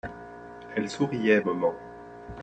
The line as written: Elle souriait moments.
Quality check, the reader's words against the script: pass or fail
pass